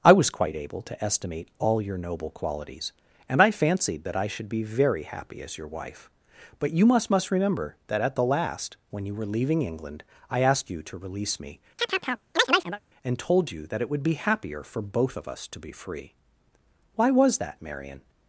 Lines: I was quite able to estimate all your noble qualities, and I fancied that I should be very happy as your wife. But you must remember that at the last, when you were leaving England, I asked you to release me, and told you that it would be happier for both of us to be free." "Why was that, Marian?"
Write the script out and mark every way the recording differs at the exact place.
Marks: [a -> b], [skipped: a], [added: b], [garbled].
I was quite able to estimate all your noble qualities, and I fancied that I should be very happy as your wife. But you must [added: must] remember that at the last, when you were leaving England, I asked you to release me, and told you that it would be happier for both of us to be free." "Why was that, Marian?"